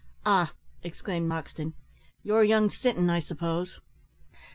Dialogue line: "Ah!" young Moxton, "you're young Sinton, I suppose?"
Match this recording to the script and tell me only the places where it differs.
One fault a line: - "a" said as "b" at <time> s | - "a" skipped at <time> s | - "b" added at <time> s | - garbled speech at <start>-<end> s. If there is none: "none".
- "young" said as "exclaimed" at 0.8 s